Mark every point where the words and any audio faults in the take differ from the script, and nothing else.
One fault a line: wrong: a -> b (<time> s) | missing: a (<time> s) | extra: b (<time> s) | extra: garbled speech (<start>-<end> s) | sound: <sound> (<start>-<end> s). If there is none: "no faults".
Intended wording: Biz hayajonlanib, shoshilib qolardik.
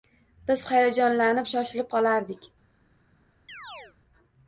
sound: chirp (3.5-4.0 s)